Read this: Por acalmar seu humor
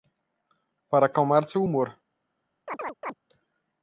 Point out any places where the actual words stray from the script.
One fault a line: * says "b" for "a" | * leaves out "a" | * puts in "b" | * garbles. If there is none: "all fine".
* says "Para" for "Por"